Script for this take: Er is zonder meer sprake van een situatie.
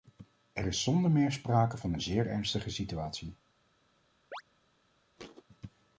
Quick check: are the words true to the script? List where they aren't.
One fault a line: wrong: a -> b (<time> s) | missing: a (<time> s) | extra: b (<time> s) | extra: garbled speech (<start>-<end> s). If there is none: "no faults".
extra: zeer ernstige (2.0 s)